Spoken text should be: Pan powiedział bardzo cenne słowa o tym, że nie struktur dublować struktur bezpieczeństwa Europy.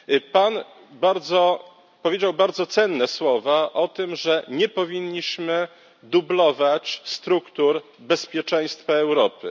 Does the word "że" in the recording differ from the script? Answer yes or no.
no